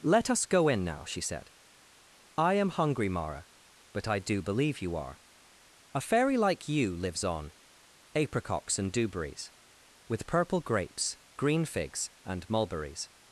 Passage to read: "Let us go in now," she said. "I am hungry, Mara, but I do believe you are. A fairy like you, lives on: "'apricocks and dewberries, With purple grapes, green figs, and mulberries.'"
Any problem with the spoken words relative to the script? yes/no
no